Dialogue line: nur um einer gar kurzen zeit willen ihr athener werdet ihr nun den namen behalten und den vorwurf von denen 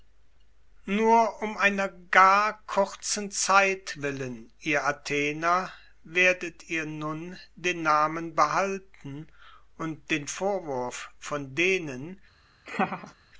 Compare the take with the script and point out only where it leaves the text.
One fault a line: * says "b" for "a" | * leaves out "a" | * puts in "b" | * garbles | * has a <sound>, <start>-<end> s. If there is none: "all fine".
* has a laugh, 12.7-13.1 s